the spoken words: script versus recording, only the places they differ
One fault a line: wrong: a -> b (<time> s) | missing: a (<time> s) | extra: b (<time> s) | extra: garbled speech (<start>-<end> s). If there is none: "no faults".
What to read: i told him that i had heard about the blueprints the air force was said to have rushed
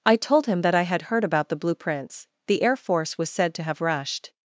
no faults